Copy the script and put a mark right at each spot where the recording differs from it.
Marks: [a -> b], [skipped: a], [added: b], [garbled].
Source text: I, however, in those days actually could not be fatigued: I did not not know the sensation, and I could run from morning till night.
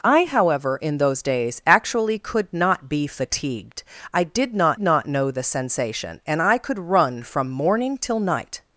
I, however, in those days actually could not be fatigued: I did not not know the sensation, and I could run from morning till night.